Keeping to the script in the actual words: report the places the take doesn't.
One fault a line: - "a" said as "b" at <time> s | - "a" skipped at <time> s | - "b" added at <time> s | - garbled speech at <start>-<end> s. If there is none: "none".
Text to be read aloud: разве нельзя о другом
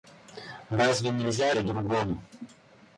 none